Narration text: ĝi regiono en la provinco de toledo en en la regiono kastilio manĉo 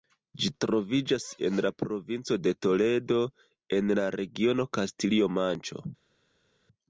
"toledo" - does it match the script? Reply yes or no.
yes